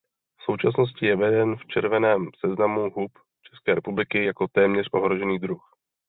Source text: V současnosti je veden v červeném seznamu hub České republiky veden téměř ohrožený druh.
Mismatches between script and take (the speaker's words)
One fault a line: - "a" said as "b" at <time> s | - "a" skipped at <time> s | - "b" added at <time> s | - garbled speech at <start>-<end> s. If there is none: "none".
- "veden" said as "jako" at 4.2 s